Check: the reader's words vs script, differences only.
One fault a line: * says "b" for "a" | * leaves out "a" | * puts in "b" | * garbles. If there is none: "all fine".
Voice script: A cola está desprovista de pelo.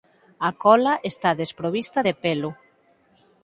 all fine